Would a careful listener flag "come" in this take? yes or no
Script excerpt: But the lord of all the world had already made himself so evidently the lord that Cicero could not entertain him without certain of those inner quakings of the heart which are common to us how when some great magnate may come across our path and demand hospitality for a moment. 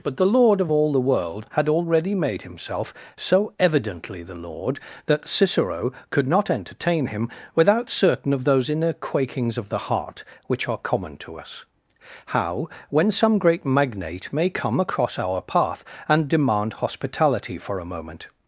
no